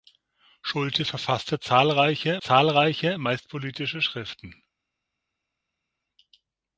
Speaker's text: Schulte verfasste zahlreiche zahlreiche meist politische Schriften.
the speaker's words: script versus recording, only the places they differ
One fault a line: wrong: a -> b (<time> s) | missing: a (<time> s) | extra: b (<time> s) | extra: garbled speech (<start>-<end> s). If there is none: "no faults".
no faults